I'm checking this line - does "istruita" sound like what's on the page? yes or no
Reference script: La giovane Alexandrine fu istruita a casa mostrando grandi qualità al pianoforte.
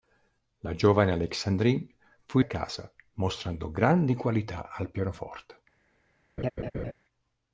no